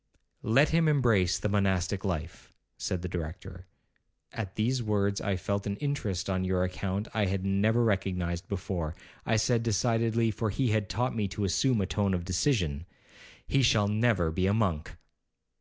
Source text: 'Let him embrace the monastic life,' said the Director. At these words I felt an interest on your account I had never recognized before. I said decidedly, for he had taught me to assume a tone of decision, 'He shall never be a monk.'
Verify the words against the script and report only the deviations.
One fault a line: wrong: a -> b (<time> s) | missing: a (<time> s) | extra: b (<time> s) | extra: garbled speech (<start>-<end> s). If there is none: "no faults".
no faults